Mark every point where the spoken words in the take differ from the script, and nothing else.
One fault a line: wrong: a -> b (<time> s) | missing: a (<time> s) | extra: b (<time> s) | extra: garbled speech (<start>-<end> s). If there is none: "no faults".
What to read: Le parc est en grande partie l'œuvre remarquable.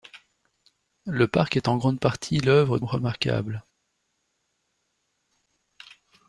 no faults